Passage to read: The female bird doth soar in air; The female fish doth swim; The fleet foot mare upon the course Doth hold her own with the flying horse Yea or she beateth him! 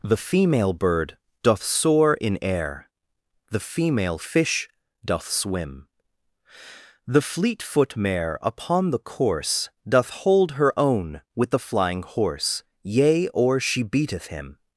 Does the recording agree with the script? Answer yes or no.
yes